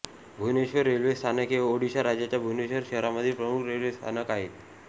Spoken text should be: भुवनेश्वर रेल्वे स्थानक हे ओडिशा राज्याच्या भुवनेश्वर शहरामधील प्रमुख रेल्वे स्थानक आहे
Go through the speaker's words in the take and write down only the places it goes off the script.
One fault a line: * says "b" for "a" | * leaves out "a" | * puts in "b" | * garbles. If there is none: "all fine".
all fine